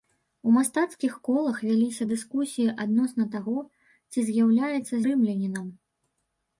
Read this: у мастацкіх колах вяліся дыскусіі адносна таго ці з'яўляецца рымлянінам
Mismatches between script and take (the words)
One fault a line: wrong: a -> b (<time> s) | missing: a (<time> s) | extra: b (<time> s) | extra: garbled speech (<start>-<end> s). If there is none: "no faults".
no faults